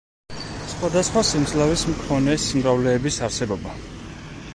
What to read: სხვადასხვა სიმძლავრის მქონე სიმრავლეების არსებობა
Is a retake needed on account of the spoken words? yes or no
no